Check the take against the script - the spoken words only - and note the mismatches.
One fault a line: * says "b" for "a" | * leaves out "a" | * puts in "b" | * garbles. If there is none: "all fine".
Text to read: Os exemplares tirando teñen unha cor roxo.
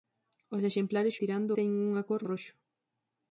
all fine